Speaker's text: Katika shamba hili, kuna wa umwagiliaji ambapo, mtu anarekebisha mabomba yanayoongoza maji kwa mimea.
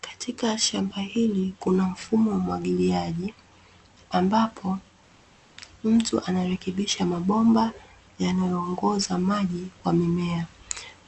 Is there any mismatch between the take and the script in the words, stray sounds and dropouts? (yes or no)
yes